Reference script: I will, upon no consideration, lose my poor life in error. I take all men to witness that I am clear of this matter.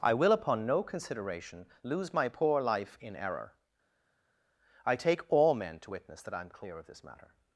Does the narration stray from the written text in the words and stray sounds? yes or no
no